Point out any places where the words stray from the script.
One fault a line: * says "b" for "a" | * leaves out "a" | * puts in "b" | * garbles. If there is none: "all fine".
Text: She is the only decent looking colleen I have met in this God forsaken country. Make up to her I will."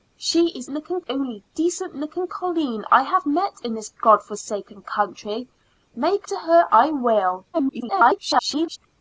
* says "looking" for "the"
* leaves out "up"
* garbles